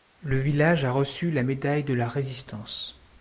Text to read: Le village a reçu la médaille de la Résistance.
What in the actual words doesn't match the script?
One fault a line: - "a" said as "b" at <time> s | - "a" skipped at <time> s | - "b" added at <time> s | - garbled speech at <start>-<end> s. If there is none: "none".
none